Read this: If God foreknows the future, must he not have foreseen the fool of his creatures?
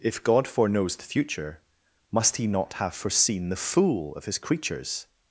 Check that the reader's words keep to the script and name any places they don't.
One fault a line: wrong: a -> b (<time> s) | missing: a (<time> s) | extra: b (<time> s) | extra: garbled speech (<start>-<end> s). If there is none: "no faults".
no faults